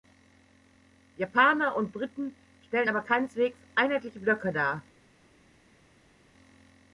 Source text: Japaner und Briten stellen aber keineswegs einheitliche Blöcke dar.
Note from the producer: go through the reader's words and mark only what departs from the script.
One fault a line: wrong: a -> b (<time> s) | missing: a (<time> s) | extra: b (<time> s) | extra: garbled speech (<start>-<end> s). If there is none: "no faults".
no faults